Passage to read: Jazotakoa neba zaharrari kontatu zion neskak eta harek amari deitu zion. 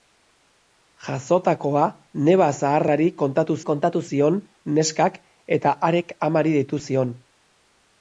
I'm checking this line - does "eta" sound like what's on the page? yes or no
yes